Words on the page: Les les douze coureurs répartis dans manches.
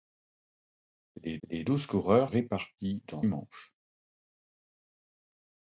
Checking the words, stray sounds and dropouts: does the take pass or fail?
pass